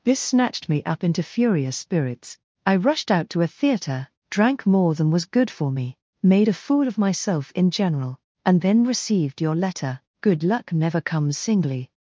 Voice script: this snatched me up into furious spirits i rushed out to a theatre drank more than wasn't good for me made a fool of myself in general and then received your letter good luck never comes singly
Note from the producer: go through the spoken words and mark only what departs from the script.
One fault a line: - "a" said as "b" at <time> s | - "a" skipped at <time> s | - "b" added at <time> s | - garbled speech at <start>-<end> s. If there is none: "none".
- "wasn't" said as "was" at 5.1 s